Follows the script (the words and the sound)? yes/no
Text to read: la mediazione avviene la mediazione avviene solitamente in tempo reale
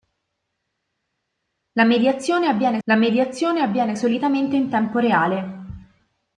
yes